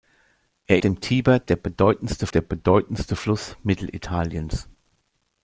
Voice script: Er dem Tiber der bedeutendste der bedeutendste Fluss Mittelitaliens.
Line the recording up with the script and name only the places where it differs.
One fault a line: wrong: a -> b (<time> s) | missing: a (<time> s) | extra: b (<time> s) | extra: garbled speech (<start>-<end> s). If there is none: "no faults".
no faults